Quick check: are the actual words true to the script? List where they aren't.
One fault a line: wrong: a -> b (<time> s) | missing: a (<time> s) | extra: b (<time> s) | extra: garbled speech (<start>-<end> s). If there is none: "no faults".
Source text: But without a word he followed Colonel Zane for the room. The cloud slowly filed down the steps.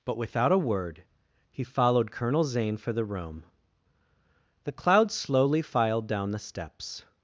no faults